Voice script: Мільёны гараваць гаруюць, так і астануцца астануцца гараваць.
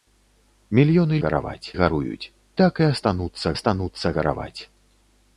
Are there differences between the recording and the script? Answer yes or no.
no